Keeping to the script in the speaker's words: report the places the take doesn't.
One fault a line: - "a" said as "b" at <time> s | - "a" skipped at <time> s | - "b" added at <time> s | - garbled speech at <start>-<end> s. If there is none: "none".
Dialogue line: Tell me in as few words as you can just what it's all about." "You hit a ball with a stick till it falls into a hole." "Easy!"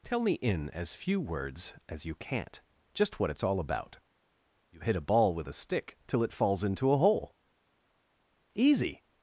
- "can" said as "can't" at 2.1 s